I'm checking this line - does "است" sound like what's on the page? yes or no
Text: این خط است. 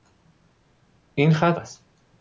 yes